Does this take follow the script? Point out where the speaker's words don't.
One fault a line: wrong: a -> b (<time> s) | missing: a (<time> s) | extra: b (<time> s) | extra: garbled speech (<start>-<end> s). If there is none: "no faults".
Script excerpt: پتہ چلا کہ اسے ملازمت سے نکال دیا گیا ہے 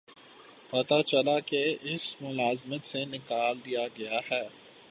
no faults